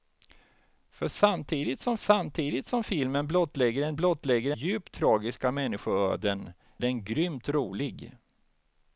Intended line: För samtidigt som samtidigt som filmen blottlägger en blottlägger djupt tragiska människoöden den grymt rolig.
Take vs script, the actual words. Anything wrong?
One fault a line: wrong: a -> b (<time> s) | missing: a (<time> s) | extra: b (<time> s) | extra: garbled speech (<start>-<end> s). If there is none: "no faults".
no faults